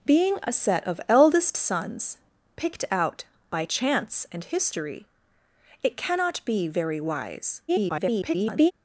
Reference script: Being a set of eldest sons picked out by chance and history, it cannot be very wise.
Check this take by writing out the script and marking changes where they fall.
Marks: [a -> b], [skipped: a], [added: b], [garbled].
Being a set of eldest sons picked out by chance and history, it cannot be very wise. [garbled]